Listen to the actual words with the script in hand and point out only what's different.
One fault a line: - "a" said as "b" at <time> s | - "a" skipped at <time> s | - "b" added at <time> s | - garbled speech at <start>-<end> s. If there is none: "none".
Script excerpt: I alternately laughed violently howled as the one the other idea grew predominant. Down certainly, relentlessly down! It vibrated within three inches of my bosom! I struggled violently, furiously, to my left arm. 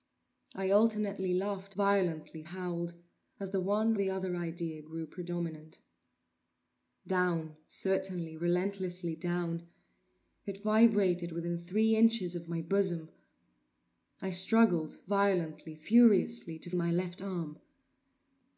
none